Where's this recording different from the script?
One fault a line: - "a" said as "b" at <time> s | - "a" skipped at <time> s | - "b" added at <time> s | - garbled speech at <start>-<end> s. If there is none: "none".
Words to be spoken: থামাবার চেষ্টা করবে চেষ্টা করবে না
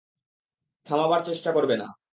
- "চেষ্টা করবে" skipped at 1.7 s